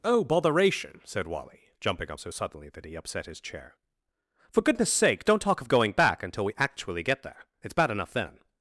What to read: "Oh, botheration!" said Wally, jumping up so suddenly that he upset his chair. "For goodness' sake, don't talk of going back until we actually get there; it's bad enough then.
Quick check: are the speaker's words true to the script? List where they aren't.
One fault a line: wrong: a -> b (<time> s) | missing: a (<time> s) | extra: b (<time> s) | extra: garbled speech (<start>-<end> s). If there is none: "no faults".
no faults